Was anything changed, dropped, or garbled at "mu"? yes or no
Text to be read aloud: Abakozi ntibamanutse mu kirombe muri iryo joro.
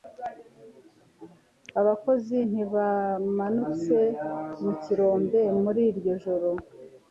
no